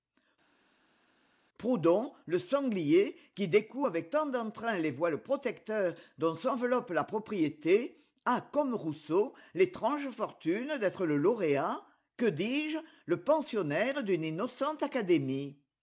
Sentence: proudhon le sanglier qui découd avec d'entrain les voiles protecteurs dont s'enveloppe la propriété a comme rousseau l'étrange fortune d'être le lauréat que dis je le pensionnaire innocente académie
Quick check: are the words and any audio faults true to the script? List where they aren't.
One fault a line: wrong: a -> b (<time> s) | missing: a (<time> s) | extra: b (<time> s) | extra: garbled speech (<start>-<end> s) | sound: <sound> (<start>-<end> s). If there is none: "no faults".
extra: tant (4.1 s)
extra: d'une (14.0 s)